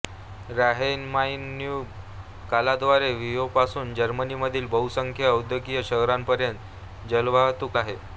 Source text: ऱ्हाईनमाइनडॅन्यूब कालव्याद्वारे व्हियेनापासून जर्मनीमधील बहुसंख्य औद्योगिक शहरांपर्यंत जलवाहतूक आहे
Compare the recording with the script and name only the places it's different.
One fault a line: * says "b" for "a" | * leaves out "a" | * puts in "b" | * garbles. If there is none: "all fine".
all fine